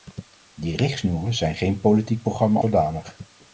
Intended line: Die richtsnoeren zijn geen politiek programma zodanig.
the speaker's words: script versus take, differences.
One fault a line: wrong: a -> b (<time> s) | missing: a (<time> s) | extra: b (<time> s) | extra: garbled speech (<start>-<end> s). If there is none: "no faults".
no faults